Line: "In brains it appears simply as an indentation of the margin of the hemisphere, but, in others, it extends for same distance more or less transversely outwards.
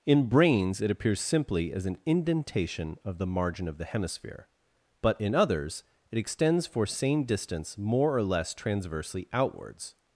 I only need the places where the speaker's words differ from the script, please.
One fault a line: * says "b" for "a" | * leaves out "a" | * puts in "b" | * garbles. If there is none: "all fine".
all fine